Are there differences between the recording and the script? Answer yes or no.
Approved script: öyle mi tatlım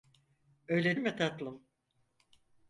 no